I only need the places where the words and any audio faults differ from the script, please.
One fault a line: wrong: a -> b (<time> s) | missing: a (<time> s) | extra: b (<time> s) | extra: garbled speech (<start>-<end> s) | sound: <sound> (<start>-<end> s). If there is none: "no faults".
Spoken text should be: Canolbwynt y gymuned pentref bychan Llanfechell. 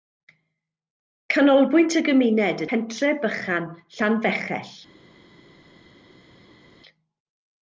no faults